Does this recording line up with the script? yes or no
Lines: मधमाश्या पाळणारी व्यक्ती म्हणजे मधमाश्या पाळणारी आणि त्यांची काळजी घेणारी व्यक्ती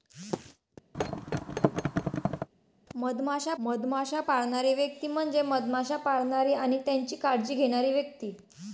no